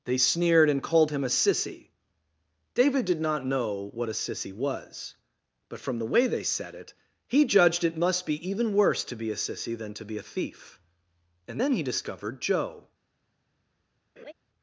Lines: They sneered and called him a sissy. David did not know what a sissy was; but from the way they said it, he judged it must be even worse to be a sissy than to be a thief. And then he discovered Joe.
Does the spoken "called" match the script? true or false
true